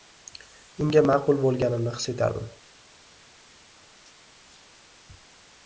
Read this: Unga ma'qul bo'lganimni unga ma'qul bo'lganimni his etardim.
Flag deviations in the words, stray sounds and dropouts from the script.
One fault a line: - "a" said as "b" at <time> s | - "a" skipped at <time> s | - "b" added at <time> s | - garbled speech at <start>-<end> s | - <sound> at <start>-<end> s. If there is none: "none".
- "unga ma'qul bo'lganimni" skipped at 1.9 s